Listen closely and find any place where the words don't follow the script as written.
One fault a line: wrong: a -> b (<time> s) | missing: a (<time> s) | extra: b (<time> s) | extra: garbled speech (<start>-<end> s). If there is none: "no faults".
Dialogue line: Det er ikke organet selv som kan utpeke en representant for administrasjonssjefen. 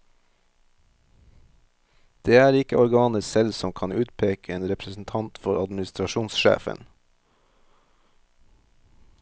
no faults